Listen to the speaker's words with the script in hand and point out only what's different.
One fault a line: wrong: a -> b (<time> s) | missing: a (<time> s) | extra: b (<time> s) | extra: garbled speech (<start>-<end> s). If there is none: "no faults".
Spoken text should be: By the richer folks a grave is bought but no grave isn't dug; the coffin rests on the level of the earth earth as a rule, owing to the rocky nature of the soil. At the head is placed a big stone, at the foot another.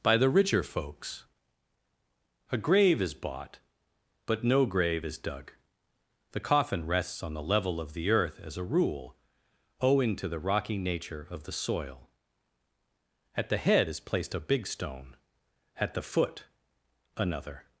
wrong: isn't -> is (5.0 s)
missing: earth (8.4 s)